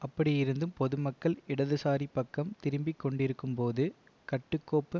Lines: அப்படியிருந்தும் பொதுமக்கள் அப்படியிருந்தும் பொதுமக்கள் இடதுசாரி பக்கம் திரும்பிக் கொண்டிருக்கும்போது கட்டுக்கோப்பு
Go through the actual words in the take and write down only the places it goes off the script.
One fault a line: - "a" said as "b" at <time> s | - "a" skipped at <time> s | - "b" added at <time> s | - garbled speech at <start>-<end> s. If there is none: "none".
- "அப்படியிருந்தும் பொதுமக்கள்" skipped at 1.4 s